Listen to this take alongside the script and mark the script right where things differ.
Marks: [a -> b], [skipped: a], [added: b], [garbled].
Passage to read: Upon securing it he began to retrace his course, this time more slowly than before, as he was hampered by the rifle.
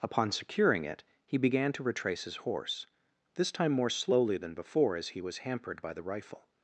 Upon securing it he began to retrace his [course, -> horse] this time more slowly than before, as he was hampered by the rifle.